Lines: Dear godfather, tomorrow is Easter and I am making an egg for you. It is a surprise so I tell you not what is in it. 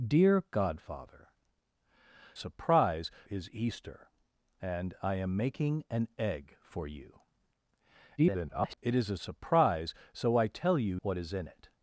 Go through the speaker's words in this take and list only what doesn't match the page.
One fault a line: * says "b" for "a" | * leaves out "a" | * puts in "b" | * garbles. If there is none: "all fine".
* says "surprise" for "tomorrow"
* garbles
* leaves out "not"